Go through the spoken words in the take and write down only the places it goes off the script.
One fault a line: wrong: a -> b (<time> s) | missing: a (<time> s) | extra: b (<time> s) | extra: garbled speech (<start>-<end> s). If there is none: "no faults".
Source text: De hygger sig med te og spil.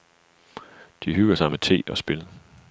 no faults